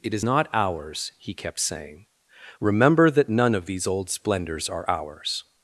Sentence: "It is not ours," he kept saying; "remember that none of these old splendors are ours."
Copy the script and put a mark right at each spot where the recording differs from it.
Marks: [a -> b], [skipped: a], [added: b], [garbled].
"It is not ours," he kept saying; "remember that none of these old splendors are ours."